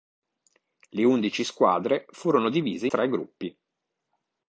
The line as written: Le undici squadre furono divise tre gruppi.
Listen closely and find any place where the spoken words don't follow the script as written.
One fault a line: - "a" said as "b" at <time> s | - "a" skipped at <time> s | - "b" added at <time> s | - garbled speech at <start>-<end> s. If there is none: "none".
none